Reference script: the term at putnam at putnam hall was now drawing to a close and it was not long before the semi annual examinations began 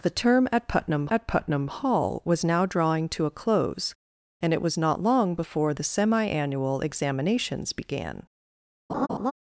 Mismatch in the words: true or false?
false